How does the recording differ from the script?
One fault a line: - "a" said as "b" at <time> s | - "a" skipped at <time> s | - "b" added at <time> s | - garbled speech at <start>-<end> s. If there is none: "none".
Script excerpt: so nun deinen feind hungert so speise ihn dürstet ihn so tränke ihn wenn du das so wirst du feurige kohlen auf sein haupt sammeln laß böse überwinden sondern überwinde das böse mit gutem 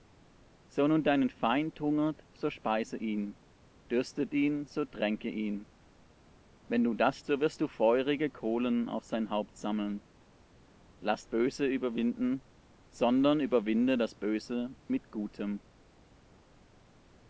none